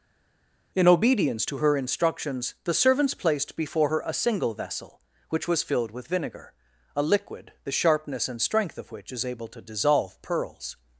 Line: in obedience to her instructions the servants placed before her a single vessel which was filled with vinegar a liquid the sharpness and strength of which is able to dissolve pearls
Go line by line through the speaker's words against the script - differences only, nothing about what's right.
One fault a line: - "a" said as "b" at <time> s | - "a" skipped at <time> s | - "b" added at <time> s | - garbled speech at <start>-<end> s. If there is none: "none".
none